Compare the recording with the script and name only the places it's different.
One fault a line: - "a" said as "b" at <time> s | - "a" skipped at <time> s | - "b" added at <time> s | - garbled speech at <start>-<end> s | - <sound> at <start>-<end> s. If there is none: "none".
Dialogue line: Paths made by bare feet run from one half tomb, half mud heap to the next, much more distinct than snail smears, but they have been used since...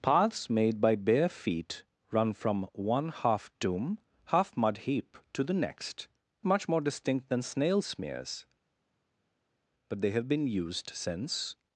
none